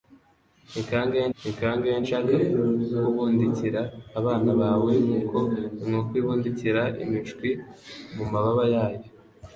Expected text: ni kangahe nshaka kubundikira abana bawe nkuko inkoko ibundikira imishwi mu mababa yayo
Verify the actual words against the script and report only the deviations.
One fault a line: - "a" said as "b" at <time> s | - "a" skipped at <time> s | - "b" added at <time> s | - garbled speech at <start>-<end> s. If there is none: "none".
- "ni kangahe" added at 1.4 s